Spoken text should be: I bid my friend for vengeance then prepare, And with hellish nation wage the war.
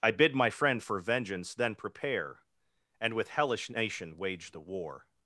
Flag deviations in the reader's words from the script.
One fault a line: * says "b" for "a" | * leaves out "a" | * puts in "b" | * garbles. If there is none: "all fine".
all fine